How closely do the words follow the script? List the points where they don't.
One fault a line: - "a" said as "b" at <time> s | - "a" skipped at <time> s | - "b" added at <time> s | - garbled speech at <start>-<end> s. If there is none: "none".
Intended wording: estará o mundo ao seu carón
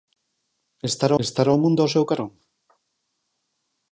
- "estará" added at 1.2 s